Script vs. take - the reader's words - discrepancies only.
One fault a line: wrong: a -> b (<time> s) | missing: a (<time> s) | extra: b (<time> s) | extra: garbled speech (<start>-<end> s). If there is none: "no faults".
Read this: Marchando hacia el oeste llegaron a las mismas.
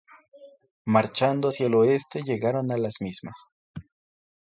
no faults